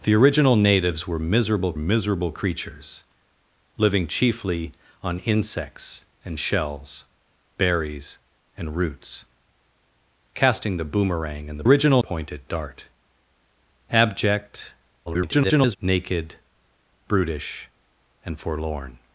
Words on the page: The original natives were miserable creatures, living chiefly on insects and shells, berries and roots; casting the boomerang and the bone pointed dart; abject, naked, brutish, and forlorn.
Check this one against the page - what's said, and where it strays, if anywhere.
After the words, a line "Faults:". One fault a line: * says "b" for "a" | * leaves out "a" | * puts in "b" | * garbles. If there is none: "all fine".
The original natives were miserable miserable creatures, living chiefly on insects and shells, berries and roots; casting the boomerang and the original pointed dart; abject, [garbled] naked, brutish, and forlorn.
Faults:
* puts in "miserable"
* says "original" for "bone"
* garbles